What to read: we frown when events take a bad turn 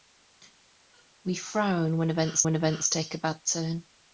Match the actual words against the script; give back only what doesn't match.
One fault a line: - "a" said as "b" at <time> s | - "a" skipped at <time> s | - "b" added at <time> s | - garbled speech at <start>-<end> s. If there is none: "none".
- "when events" added at 2.4 s